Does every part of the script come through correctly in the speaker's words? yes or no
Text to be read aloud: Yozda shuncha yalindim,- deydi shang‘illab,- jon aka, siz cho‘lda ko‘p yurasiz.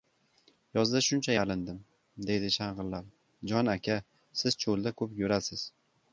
yes